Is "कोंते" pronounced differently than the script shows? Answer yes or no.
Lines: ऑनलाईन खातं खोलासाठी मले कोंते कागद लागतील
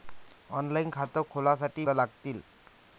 yes